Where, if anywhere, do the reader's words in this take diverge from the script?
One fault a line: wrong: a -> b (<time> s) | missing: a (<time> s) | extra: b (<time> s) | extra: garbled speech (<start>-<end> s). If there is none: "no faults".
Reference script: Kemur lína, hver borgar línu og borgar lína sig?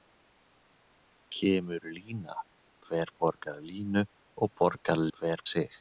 wrong: lína -> hver (5.2 s)